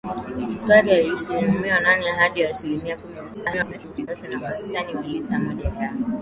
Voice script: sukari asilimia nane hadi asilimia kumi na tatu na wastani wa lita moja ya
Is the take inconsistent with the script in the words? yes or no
yes